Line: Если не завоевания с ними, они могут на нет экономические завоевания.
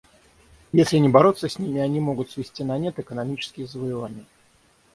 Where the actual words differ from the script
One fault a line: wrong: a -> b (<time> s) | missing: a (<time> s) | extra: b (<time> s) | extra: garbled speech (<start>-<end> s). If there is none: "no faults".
wrong: завоевания -> бороться (1.1 s)
extra: свести (2.3 s)